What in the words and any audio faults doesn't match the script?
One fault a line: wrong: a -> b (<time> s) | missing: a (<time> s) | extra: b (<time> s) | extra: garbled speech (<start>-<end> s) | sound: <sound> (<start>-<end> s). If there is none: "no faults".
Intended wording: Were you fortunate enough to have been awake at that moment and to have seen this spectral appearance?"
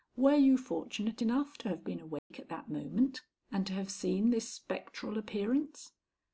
sound: dropout (2.2-2.3 s)